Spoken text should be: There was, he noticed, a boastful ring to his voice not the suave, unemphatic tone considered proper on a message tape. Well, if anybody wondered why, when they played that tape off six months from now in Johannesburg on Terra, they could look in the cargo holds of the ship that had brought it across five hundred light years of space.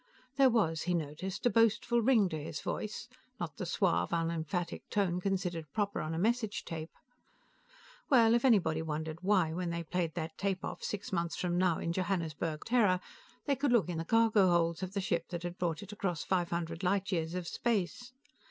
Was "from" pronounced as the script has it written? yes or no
yes